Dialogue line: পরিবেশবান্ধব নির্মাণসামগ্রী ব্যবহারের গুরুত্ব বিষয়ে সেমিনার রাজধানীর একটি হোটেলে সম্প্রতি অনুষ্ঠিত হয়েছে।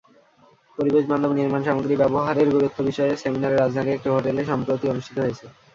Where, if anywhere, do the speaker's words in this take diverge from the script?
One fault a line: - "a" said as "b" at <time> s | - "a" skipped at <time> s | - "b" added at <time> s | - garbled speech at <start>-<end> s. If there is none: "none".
none